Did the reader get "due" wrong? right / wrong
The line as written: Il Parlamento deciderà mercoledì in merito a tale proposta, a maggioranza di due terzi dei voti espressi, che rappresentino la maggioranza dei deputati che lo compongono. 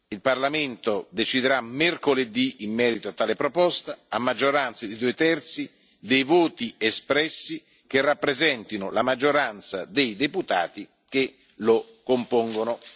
right